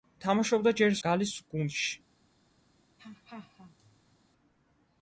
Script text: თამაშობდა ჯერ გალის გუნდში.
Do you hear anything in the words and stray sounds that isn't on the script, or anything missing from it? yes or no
yes